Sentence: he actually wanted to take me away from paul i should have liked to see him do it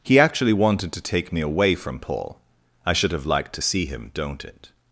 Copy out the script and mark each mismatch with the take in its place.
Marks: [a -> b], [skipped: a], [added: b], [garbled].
he actually wanted to take me away from paul i should have liked to see him [do -> don't] it